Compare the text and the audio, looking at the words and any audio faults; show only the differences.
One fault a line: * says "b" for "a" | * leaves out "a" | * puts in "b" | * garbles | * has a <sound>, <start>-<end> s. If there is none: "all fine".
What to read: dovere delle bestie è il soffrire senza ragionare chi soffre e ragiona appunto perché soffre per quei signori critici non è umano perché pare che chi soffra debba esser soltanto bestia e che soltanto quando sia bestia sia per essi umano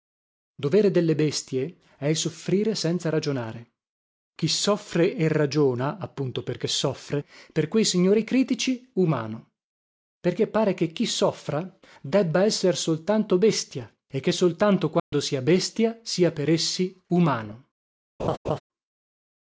* leaves out "non è"
* has a dropout, 15.0-15.1 s
* has a laugh, 18.2-18.6 s